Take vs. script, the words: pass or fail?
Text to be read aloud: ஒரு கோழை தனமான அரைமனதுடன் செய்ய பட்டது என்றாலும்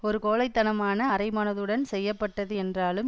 pass